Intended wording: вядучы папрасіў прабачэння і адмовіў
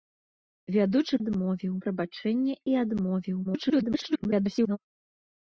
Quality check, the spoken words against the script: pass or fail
fail